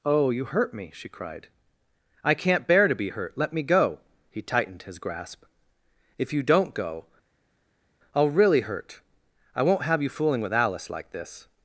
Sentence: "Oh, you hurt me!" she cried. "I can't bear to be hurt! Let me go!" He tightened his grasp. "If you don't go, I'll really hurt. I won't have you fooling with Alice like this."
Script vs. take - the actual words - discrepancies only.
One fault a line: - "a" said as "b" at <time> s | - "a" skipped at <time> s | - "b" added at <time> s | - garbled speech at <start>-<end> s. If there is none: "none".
none